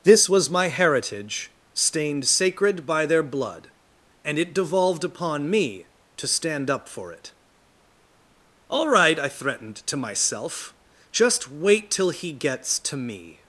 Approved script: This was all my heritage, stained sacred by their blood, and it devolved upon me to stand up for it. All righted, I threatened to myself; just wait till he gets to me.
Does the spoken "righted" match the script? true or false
false